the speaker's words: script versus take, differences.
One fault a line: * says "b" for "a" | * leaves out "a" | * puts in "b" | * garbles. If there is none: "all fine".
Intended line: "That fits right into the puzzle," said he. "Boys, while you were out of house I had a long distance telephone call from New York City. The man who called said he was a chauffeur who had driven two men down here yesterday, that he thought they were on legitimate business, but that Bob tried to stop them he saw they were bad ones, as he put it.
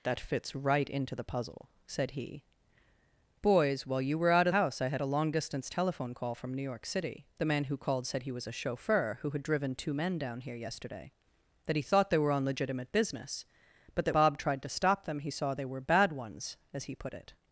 all fine